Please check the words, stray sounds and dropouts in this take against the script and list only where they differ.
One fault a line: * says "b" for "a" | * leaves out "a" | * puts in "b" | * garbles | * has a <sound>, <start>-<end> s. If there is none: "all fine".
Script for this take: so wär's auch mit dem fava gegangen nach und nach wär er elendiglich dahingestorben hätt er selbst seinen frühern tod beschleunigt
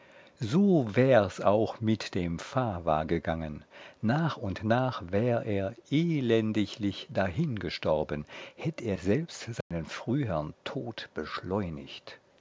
* has a dropout, 9.6-9.7 s